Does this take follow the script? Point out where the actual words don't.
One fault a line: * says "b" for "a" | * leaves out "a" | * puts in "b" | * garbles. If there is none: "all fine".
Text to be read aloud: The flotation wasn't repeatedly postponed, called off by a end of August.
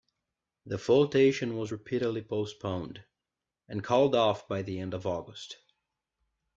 * says "was" for "wasn't"
* puts in "and"
* says "the" for "a"